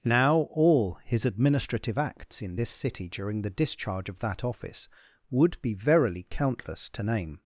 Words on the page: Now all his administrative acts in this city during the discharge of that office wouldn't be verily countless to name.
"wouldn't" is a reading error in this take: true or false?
true